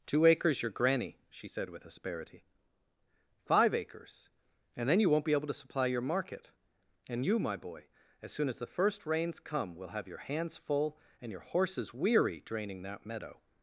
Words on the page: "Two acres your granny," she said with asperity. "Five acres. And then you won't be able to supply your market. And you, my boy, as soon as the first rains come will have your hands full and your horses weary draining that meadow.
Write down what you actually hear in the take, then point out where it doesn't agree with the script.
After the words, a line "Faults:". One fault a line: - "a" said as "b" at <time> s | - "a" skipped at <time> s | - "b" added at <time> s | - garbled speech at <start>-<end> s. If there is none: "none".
"Two acres your granny," she said with asperity. "Five acres. And then you won't be able to supply your market. And you, my boy, as soon as the first rains come will have your hands full and your horses weary draining that meadow.
Faults:
none